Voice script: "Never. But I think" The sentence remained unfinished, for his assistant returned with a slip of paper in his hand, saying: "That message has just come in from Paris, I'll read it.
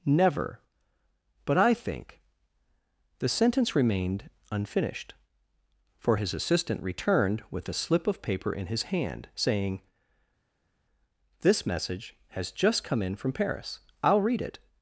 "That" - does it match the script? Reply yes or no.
no